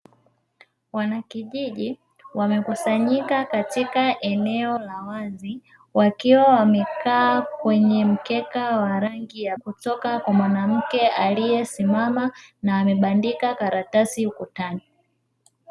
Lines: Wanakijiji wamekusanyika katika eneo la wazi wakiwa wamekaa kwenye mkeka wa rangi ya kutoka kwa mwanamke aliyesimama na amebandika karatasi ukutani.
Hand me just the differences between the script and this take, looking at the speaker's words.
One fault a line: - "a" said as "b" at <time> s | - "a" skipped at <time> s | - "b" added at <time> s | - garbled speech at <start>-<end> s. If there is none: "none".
none